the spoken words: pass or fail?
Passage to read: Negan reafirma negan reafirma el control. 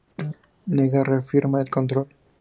fail